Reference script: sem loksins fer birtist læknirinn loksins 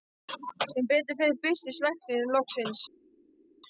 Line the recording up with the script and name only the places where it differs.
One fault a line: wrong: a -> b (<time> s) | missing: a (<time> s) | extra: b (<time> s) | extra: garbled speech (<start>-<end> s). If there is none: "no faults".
wrong: loksins -> betur (0.9 s)